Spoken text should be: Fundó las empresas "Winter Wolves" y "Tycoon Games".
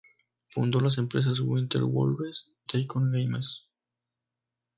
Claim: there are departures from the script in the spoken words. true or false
true